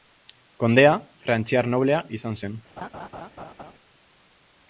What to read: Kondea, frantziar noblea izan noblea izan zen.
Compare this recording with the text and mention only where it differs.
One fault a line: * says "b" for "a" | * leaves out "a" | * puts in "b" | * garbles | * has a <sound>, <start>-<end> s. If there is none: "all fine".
* leaves out "noblea izan"
* has a laugh, 2.8-3.7 s